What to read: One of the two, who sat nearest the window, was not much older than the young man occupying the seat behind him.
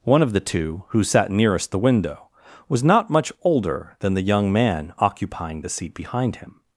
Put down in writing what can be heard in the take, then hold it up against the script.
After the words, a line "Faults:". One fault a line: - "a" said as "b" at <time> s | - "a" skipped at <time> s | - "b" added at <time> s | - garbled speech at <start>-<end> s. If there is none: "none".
One of the two, who sat nearest the window, was not much older than the young man occupying the seat behind him.
Faults:
none